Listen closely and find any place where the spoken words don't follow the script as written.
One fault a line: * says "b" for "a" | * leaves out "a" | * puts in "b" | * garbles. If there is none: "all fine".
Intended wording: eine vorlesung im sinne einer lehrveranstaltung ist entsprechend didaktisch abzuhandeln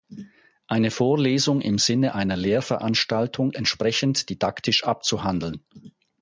* leaves out "ist"